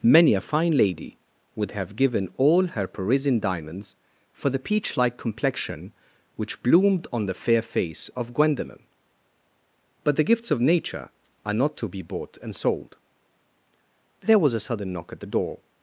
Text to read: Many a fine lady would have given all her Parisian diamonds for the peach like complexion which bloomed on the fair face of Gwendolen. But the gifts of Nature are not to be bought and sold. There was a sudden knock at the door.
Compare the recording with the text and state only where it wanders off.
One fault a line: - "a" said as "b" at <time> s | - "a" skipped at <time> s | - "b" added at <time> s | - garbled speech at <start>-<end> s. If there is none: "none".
none